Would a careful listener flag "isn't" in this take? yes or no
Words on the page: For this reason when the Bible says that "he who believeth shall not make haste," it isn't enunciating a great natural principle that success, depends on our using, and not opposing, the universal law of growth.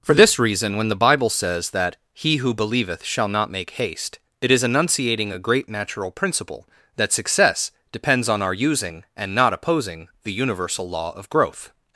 yes